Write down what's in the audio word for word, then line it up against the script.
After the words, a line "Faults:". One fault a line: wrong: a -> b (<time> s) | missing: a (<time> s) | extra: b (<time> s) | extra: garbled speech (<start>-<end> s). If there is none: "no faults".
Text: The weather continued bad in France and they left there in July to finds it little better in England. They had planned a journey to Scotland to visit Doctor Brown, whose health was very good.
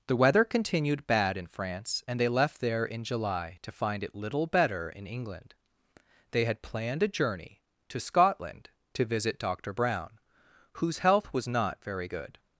The weather continued bad in France and they left there in July to find it little better in England. They had planned a journey to Scotland to visit Doctor Brown, whose health was not very good.
Faults:
wrong: finds -> find (3.7 s)
extra: not (11.5 s)